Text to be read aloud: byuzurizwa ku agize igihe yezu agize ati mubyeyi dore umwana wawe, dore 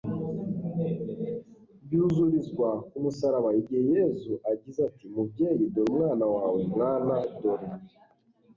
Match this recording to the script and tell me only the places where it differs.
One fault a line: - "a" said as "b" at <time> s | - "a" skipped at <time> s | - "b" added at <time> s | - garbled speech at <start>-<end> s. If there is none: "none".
- "agize" said as "musaraba" at 3.0 s
- "mwana" added at 6.7 s